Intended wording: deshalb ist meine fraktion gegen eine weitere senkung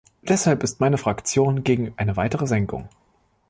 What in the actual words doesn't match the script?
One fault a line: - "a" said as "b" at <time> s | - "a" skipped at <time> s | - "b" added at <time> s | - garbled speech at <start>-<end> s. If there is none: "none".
none